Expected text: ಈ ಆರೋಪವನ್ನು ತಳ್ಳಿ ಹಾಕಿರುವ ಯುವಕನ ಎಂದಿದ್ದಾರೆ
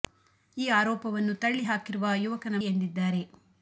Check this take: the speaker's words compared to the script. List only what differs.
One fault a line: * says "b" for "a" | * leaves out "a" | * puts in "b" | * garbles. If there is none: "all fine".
all fine